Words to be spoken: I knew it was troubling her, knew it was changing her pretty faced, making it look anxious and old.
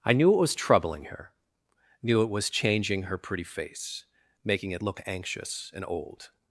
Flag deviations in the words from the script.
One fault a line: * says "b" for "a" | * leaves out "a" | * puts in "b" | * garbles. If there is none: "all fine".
* says "face" for "faced"